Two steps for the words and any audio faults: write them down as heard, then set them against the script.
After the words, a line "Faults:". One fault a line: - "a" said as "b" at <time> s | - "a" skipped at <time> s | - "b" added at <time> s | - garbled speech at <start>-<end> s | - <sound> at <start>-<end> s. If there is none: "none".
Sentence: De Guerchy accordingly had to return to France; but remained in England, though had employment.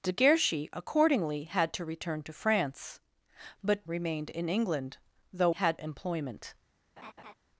De Guerchy accordingly had to return to France; but remained in England, though had employment.
Faults:
- laugh at 7.0-7.3 s